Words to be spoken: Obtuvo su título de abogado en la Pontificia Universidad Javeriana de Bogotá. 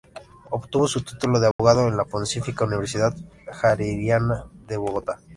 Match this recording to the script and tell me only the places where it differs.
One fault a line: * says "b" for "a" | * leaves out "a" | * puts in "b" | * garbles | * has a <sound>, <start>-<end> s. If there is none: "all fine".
* has a dropout, 1.5-1.6 s